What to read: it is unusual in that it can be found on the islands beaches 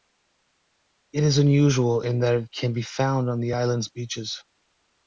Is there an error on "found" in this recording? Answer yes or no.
no